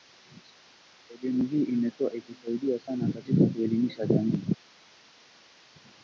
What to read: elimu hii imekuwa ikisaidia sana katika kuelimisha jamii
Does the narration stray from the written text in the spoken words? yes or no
no